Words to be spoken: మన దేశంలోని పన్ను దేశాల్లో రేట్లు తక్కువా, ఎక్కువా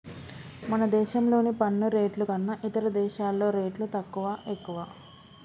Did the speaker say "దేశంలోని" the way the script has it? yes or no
yes